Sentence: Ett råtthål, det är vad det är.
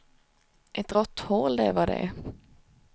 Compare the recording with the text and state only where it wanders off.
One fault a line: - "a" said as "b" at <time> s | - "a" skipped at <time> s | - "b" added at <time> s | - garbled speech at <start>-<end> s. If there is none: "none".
none